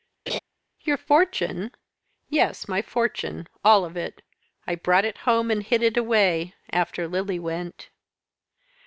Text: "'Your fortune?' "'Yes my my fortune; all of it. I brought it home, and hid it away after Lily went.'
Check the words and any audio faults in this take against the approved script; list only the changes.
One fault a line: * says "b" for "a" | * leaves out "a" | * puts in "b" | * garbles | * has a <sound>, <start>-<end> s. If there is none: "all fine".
* has a laugh, 0.3-0.4 s
* leaves out "my"